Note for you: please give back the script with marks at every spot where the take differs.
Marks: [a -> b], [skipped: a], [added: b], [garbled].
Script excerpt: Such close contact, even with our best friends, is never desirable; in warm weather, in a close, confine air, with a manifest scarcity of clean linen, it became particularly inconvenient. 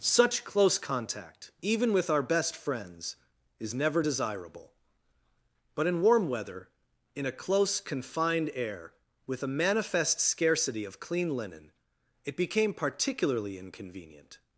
Such close contact, even with our best friends, is never desirable; [added: but] in warm weather, in a close, [confine -> confined] air, with a manifest scarcity of clean linen, it became particularly inconvenient.